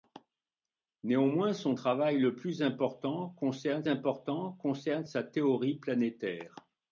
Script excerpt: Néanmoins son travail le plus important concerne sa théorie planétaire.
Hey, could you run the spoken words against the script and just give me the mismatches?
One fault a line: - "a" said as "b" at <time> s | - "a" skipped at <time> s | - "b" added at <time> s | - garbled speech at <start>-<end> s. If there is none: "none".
- "important concerne" added at 3.9 s